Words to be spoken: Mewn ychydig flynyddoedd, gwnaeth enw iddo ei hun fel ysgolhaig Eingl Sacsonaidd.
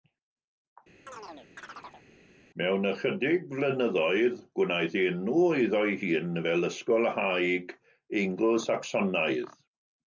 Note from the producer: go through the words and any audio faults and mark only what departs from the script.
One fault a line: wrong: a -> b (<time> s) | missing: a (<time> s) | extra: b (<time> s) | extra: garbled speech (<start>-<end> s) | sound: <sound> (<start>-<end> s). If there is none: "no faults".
sound: chirp (1.1-2.1 s)